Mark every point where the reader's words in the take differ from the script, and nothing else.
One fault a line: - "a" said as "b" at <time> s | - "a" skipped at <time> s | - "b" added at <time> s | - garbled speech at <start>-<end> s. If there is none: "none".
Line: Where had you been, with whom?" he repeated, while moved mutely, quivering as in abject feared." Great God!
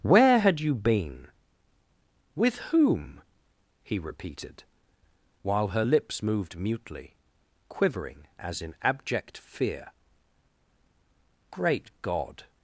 - "her lips" added at 5.7 s
- "feared" said as "fear" at 9.4 s